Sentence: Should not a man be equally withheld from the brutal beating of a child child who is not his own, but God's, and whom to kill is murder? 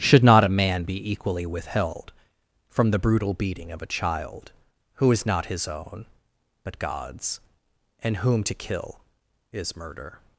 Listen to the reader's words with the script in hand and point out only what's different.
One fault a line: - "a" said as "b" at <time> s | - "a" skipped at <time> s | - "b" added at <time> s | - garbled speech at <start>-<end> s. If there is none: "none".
- "child" skipped at 4.5 s